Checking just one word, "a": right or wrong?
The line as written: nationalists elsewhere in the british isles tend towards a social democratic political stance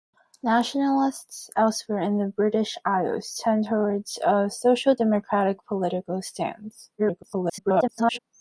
right